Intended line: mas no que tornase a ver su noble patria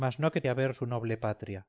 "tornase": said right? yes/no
no